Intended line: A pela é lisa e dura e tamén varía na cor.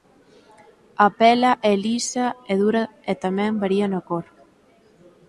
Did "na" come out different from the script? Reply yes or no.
no